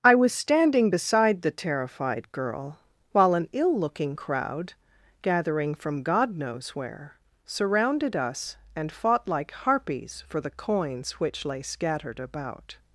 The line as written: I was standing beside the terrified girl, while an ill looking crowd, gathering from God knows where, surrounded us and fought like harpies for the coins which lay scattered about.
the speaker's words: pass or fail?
pass